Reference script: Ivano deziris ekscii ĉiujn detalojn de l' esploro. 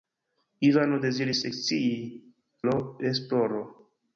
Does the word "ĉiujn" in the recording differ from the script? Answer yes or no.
yes